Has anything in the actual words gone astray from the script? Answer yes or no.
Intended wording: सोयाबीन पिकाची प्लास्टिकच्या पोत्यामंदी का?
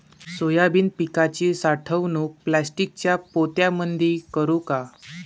yes